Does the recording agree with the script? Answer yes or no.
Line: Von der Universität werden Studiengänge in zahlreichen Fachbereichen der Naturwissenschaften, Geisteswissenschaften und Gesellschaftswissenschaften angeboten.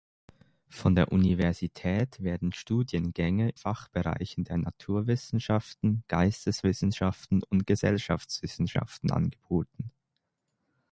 no